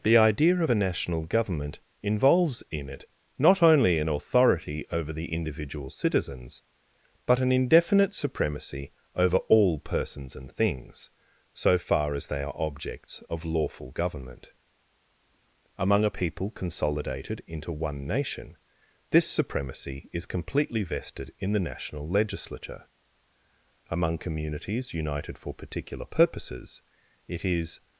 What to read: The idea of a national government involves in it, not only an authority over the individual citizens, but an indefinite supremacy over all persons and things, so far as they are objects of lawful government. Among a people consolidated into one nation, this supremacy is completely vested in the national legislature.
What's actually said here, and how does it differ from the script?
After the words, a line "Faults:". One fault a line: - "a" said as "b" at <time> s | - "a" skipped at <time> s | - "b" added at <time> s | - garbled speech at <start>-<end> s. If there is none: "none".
The idea of a national government involves in it, not only an authority over the individual citizens, but an indefinite supremacy over all persons and things, so far as they are objects of lawful government. Among a people consolidated into one nation, this supremacy is completely vested in the national legislature. Among communities united for particular purposes, it is
Faults:
- "Among communities united for particular purposes it is" added at 23.9 s